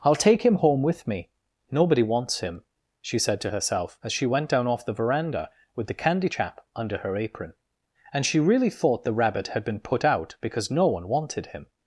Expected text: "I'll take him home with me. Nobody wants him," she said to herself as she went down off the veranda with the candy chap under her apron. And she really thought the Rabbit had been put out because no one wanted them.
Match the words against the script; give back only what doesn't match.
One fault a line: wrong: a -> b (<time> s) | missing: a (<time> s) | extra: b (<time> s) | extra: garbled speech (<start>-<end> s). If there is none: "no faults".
wrong: them -> him (11.5 s)